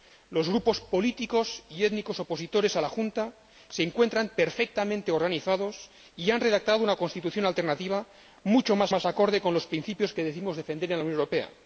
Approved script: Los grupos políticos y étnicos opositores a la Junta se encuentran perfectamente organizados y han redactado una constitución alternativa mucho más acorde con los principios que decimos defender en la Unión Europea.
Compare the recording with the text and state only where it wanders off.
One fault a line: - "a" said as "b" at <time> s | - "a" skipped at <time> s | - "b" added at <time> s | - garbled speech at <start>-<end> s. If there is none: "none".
- "más" added at 8.9 s